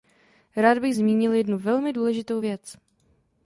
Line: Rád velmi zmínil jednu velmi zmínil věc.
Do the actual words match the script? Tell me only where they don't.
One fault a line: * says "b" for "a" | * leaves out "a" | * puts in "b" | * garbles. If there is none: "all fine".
* says "bych" for "velmi"
* says "důležitou" for "zmínil"